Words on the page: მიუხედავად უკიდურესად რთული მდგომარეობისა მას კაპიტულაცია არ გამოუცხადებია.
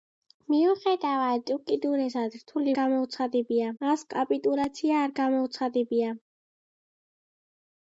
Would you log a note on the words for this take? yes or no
yes